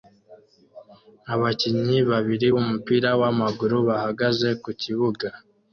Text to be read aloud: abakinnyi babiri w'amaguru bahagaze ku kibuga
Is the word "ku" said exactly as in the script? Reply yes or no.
yes